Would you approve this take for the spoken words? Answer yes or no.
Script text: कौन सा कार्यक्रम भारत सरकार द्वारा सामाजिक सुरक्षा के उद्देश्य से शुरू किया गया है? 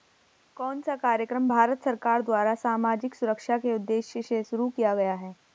yes